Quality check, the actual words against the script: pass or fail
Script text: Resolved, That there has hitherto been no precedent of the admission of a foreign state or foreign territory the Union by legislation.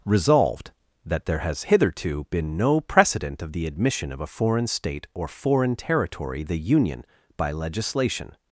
pass